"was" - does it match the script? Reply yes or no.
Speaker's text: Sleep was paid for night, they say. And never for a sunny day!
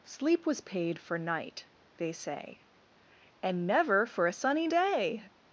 yes